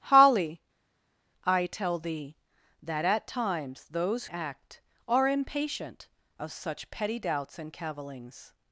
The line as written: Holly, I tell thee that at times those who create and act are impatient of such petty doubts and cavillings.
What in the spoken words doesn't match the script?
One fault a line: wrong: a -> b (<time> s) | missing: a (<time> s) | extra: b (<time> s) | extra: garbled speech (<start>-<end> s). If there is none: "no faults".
missing: who create and (4.3 s)